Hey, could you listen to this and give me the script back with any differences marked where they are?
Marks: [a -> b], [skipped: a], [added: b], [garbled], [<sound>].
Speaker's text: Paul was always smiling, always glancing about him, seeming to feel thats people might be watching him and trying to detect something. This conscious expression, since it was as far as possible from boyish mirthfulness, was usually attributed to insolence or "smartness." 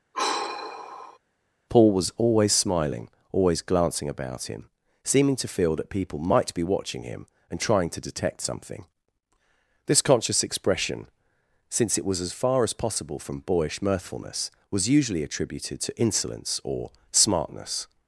[sigh] Paul was always smiling, always glancing about him, seeming to feel [thats -> that] people might be watching him and trying to detect something. This conscious expression, since it was as far as possible from boyish mirthfulness, was usually attributed to insolence or "smartness."